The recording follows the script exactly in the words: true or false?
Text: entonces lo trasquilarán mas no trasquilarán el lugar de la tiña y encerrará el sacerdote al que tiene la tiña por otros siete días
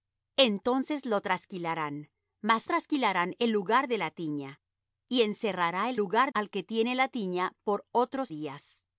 false